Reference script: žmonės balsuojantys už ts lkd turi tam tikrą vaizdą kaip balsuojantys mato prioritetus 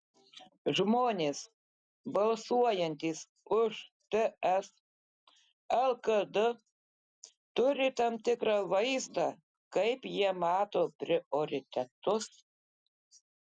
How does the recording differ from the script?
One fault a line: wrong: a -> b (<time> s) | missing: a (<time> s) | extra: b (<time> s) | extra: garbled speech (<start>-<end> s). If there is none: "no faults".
wrong: balsuojantys -> jie (10.2 s)